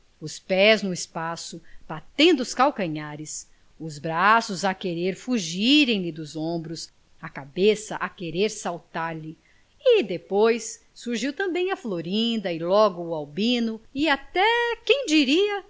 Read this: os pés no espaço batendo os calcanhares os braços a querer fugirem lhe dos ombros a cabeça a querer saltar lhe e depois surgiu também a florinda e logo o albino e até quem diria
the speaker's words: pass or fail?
pass